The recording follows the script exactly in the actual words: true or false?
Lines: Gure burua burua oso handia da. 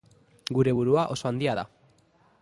false